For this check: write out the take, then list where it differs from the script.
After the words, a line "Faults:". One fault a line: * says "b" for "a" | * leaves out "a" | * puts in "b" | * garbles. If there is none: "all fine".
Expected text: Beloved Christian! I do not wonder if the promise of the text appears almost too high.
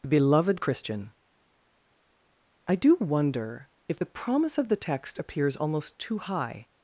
Beloved Christian! I do wonder if the promise of the text appears almost too high.
Faults:
* leaves out "not"